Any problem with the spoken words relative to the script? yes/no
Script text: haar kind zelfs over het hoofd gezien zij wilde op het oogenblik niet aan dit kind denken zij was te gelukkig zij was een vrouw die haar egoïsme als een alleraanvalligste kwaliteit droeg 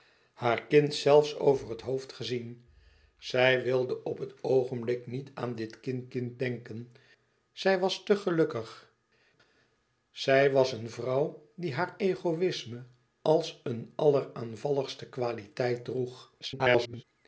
yes